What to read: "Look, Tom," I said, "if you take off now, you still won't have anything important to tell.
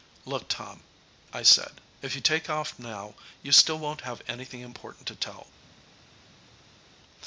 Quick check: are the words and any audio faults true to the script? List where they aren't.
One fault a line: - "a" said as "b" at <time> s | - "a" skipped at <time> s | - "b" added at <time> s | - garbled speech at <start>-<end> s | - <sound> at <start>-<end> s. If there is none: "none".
none